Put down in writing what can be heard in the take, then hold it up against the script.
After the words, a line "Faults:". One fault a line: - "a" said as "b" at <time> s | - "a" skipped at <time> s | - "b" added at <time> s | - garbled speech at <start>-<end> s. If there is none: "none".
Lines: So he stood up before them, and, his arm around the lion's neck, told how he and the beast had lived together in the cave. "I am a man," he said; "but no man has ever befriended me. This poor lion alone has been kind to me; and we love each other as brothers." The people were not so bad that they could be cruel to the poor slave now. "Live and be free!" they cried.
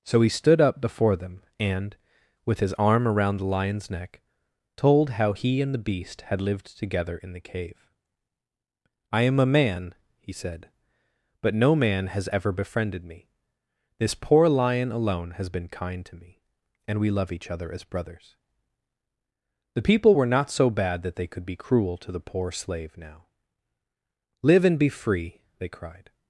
So he stood up before them, and, with his arm around the lion's neck, told how he and the beast had lived together in the cave. "I am a man," he said; "but no man has ever befriended me. This poor lion alone has been kind to me; and we love each other as brothers." The people were not so bad that they could be cruel to the poor slave now. "Live and be free!" they cried.
Faults:
- "with" added at 2.5 s